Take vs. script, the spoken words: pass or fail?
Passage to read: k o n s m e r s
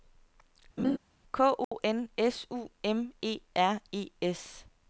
fail